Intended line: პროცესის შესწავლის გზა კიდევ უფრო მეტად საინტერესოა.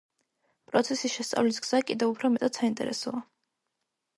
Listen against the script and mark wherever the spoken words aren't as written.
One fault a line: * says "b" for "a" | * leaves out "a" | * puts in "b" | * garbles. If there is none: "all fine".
all fine